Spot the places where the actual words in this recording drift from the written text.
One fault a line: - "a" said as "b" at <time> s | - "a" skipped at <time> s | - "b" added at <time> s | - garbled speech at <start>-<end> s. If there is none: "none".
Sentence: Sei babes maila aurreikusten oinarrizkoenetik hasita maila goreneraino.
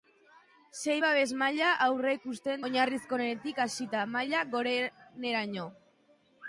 none